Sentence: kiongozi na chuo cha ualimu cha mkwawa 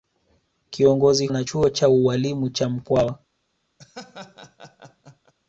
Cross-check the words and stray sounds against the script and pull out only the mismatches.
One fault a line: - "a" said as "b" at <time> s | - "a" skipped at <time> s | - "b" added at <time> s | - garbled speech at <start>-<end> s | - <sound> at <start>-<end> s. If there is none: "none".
- laugh at 3.8-5.3 s